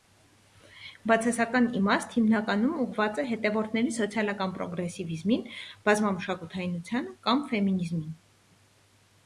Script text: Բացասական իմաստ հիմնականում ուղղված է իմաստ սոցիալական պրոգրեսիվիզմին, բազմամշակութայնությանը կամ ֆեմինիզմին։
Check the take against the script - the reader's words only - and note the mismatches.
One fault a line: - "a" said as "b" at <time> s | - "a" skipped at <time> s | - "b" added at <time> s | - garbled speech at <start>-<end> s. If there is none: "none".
- "իմաստ" said as "հետևորդների" at 3.3 s